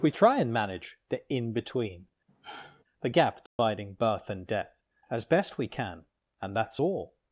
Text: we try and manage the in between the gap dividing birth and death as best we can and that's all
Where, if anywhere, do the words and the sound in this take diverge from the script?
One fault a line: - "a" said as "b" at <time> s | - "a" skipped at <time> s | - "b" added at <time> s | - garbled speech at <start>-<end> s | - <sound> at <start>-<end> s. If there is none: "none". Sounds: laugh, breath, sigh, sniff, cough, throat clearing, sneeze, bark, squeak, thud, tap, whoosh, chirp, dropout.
- sigh at 2.3-2.8 s
- dropout at 3.5-3.6 s